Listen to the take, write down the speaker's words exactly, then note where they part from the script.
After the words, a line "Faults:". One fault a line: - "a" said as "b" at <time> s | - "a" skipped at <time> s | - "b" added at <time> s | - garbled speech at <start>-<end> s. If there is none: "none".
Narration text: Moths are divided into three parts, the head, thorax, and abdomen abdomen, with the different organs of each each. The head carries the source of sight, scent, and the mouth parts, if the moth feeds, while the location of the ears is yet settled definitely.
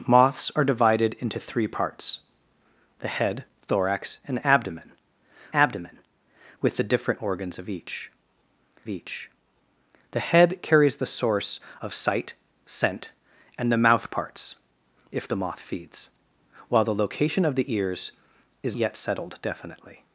Moths are divided into three parts, the head, thorax, and abdomen abdomen, with the different organs of each each. The head carries the source of sight, scent, and the mouth parts, if the moth feeds, while the location of the ears is yet settled definitely.
Faults:
none